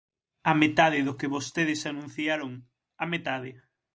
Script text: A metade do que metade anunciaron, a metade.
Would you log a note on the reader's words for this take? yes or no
yes